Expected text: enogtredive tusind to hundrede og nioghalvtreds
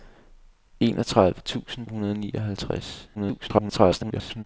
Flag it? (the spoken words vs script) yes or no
yes